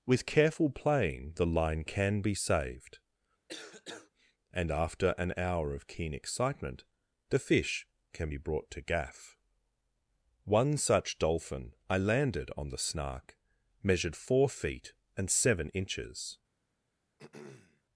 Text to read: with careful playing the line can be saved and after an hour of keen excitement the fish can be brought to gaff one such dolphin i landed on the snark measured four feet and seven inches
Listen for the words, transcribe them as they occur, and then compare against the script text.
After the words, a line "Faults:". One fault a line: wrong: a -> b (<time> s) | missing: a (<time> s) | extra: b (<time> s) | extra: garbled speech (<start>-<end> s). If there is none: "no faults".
with careful playing the line can be saved and after an hour of keen excitement the fish can be brought to gaff one such dolphin i landed on the snark measured four feet and seven inches
Faults:
no faults